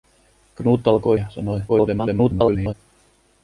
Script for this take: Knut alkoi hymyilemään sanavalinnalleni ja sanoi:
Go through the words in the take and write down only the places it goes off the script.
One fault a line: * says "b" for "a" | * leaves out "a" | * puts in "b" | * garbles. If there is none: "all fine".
* leaves out "hymyilemään sanavalinnalleni"
* garbles